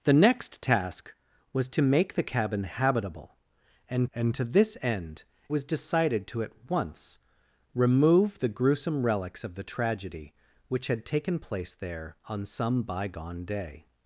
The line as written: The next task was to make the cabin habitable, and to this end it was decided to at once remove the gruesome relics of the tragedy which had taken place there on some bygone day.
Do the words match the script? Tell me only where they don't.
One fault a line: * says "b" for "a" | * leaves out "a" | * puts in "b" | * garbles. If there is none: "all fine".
* puts in "and"
* leaves out "it"